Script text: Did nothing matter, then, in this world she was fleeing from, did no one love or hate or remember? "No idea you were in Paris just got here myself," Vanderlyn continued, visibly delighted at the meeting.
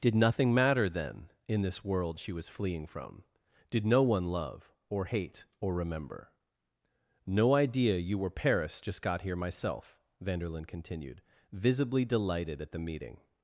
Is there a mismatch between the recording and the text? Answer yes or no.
yes